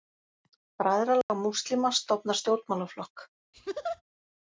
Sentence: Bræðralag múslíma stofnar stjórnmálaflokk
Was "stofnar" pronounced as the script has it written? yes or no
yes